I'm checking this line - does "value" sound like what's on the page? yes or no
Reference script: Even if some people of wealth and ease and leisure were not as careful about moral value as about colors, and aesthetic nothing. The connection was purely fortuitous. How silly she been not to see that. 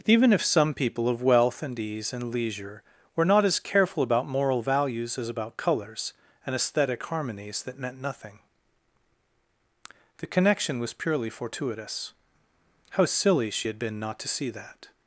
no